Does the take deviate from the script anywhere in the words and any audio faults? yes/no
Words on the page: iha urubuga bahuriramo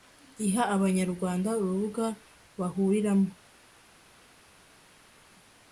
yes